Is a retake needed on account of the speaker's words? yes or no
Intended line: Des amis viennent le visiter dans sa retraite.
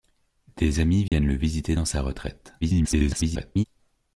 yes